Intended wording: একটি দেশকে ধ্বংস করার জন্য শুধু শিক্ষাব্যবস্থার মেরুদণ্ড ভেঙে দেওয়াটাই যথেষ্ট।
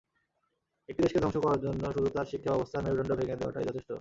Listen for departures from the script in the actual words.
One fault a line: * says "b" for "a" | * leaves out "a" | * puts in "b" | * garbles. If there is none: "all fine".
* puts in "তার"